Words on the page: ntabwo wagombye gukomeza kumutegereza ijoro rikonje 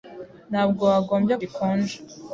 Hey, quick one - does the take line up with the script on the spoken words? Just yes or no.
no